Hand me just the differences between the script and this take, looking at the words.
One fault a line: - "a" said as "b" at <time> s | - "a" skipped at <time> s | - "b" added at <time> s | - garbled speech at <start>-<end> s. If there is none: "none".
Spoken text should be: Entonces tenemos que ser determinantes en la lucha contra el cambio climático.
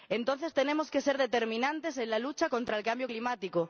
none